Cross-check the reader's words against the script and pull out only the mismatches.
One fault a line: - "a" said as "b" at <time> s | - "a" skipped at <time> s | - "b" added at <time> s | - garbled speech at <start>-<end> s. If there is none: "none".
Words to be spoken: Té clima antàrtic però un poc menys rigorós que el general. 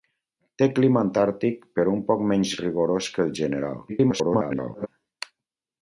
- garbled speech at 3.9-4.9 s